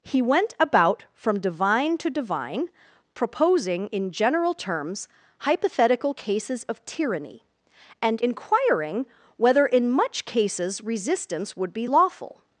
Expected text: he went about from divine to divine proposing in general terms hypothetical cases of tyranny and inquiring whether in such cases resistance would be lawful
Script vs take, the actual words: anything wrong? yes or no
yes